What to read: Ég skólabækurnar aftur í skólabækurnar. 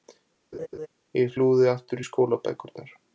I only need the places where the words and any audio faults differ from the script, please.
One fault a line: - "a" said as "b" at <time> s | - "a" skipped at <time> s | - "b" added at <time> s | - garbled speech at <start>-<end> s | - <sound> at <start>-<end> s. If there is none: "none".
- laugh at 0.5-0.9 s
- "skólabækurnar" said as "flúði" at 1.4 s